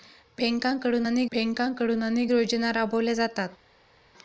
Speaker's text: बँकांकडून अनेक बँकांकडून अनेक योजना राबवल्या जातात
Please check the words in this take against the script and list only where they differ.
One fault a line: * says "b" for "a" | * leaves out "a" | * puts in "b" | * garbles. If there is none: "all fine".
all fine